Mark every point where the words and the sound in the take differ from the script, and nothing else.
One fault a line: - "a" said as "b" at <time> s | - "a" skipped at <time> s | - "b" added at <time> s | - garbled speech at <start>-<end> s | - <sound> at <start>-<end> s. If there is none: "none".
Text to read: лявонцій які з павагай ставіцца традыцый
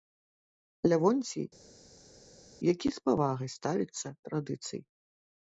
none